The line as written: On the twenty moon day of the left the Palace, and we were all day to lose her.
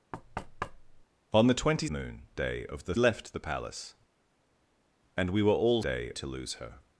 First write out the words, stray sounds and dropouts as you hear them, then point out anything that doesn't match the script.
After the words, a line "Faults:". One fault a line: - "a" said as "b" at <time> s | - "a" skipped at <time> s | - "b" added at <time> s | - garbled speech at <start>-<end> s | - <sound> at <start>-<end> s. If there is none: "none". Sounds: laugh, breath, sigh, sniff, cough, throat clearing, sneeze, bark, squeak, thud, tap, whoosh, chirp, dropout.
On the twenty moon day of the left the Palace, and we were all day to lose her.
Faults:
- thud at 0.1-1.0 s